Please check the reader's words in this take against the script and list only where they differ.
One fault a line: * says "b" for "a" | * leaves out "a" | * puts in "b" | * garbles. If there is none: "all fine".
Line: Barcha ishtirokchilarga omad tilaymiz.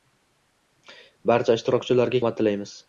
all fine